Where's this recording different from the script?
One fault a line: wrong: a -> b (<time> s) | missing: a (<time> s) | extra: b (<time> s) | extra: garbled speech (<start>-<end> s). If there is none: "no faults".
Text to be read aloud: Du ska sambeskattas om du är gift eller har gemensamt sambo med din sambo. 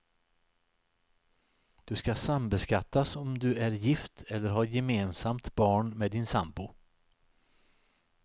wrong: sambo -> barn (5.5 s)